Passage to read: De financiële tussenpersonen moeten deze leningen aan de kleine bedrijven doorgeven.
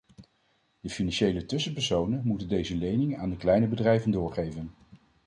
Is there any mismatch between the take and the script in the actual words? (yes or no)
no